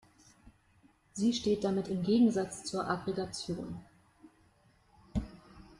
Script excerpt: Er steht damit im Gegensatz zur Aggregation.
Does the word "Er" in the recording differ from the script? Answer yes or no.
yes